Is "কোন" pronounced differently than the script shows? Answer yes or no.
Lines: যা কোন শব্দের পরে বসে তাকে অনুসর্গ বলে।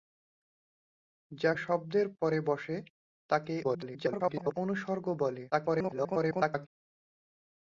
yes